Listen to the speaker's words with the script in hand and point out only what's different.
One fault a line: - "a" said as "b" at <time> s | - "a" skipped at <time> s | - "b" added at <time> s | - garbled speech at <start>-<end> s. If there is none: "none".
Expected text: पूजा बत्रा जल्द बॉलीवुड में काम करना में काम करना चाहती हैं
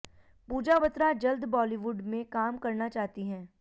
- "में काम करना" skipped at 2.9 s